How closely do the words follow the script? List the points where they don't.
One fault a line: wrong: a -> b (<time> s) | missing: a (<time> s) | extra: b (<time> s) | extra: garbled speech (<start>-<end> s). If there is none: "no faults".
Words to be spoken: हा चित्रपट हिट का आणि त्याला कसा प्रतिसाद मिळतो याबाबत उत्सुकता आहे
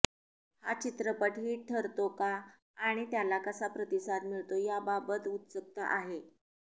extra: ठरतो (1.7 s)